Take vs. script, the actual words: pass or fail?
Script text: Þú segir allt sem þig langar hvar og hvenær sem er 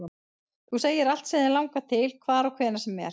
fail